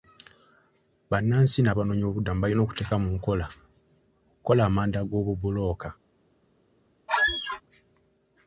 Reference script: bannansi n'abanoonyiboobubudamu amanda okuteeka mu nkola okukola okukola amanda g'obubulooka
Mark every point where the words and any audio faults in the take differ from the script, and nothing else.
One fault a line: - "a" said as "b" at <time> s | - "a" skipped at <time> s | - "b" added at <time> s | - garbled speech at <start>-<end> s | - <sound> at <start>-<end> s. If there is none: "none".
- "amanda" said as "balina" at 2.4 s
- "okukola" skipped at 4.6 s
- squeak at 7.1-7.6 s